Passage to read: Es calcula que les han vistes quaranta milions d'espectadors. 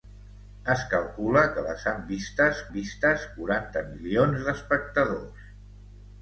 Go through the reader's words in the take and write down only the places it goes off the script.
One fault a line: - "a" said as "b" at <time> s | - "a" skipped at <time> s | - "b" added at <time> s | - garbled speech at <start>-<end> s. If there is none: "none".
- "vistes" added at 2.8 s